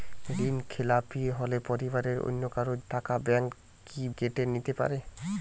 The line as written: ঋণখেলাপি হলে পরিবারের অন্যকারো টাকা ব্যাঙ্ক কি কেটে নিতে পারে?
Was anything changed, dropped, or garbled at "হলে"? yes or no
no